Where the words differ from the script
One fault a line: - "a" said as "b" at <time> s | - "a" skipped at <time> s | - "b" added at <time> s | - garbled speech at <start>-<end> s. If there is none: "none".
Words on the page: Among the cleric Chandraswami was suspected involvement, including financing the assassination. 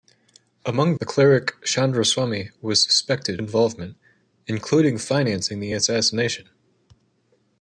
none